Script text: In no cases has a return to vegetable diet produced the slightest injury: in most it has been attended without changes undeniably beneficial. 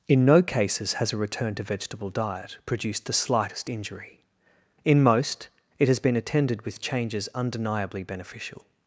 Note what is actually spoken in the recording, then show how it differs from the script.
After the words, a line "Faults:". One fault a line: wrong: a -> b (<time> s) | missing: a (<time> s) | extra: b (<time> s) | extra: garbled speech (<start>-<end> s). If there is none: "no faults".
In no cases has a return to vegetable diet produced the slightest injury: in most it has been attended with changes undeniably beneficial.
Faults:
wrong: without -> with (6.6 s)